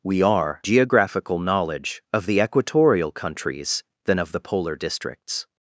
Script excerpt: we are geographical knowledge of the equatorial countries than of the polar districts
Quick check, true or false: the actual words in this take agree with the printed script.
true